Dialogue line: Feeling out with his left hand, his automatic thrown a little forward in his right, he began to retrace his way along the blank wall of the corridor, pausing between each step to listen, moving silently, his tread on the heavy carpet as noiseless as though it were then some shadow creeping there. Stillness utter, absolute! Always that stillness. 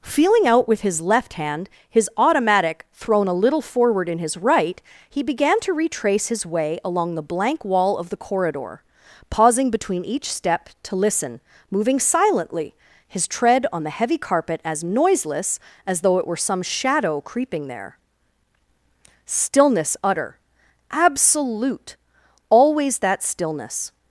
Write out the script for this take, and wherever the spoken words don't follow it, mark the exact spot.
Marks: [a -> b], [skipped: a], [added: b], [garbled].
Feeling out with his left hand, his automatic thrown a little forward in his right, he began to retrace his way along the blank wall of the corridor, pausing between each step to listen, moving silently, his tread on the heavy carpet as noiseless as though it were [skipped: then] some shadow creeping there. Stillness utter, absolute! Always that stillness.